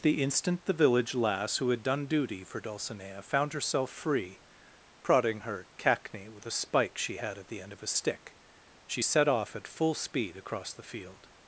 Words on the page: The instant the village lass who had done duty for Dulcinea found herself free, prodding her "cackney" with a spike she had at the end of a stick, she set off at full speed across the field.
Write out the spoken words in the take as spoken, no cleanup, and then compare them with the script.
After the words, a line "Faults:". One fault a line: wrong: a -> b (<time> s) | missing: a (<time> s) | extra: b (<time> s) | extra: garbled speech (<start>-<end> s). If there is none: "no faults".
The instant the village lass who had done duty for Dulcinea found herself free, prodding her "cackney" with a spike she had at the end of a stick, she set off at full speed across the field.
Faults:
no faults